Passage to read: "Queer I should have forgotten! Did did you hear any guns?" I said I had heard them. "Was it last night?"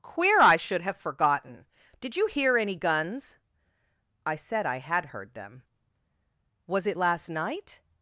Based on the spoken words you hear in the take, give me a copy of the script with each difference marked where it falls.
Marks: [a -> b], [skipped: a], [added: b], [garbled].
"Queer I should have forgotten! Did [skipped: did] you hear any guns?" I said I had heard them. "Was it last night?"